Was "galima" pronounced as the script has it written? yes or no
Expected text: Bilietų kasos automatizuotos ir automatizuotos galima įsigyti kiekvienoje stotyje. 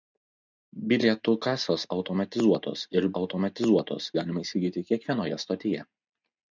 yes